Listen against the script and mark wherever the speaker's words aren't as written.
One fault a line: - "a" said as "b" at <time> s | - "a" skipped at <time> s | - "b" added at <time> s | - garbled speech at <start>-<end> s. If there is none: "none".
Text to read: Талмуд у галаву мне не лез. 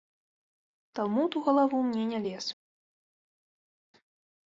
none